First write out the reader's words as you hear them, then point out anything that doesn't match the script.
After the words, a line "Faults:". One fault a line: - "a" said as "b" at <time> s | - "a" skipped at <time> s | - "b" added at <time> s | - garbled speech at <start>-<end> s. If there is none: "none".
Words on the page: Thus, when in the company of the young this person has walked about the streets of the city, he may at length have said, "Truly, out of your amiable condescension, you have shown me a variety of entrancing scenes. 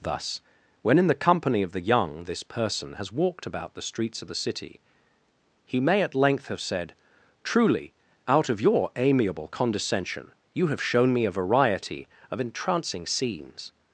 Thus, when in the company of the young this person has walked about the streets of the city, he may at length have said, "Truly, out of your amiable condescension, you have shown me a variety of entrancing scenes.
Faults:
none